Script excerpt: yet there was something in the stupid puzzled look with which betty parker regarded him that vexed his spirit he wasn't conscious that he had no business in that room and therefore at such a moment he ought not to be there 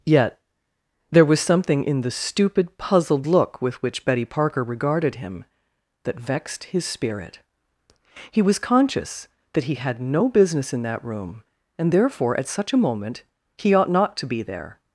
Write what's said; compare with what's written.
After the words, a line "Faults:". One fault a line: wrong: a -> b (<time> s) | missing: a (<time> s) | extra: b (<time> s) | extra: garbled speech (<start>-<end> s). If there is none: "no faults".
yet there was something in the stupid puzzled look with which betty parker regarded him that vexed his spirit he was conscious that he had no business in that room and therefore at such a moment he ought not to be there
Faults:
wrong: wasn't -> was (8.4 s)